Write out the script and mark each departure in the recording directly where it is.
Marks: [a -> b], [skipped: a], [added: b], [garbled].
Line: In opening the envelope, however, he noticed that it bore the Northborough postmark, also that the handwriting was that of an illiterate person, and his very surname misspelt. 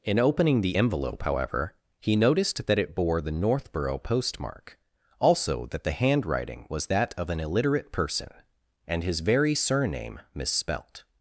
In opening the envelope, however, he noticed that it bore the Northborough postmark, also that the handwriting was that of an illiterate person, and his very surname misspelt.